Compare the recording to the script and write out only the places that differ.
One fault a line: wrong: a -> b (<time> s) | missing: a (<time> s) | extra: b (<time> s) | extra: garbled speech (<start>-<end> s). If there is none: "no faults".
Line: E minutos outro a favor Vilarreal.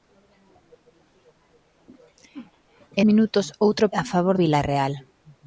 no faults